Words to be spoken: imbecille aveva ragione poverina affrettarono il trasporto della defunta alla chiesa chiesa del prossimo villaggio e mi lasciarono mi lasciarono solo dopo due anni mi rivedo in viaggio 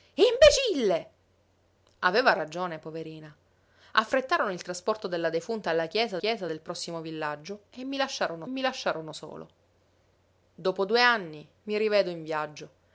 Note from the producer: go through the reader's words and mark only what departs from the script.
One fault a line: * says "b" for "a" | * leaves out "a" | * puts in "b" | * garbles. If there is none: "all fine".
all fine